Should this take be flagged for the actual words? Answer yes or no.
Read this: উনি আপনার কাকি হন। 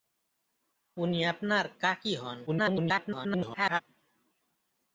yes